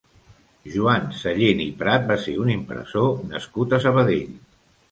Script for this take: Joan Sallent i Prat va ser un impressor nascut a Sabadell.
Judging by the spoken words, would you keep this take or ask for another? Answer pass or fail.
pass